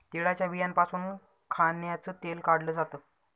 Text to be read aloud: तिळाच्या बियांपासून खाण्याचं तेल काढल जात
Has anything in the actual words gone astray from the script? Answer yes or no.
no